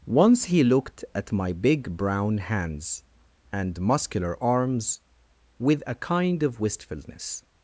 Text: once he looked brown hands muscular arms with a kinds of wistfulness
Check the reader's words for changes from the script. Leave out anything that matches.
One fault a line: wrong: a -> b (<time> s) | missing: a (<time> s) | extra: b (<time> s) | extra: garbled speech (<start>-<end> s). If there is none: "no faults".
extra: at my big (1.1 s)
extra: and (3.5 s)
wrong: kinds -> kind (6.0 s)